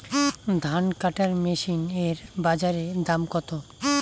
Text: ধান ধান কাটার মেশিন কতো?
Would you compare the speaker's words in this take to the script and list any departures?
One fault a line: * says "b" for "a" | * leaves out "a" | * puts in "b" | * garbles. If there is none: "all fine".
* leaves out "ধান"
* puts in "এর বাজারে দাম"